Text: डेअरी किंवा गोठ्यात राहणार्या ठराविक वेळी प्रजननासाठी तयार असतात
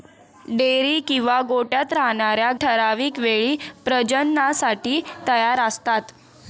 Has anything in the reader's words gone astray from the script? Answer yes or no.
no